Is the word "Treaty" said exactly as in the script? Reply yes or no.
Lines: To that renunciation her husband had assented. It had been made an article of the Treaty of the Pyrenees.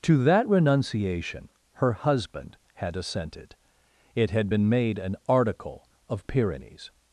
no